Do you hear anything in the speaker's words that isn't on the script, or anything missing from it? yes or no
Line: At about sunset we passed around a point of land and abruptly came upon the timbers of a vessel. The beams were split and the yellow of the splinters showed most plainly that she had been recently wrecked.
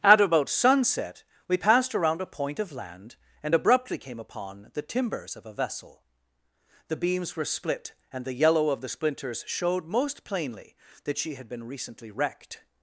no